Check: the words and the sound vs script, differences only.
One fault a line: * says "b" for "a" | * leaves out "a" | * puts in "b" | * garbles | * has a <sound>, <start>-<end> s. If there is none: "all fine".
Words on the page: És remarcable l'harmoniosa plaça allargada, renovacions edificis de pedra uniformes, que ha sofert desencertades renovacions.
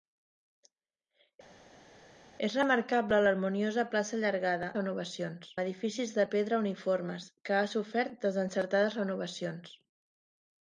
all fine